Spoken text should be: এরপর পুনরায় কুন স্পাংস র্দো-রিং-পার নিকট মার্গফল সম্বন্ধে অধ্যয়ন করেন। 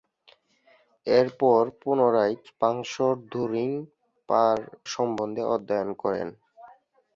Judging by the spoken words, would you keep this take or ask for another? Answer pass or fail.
fail